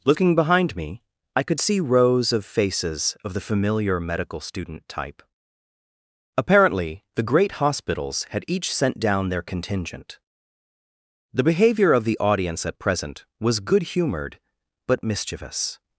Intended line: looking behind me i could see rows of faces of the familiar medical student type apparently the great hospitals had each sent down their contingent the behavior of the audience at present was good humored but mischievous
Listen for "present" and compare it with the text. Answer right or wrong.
right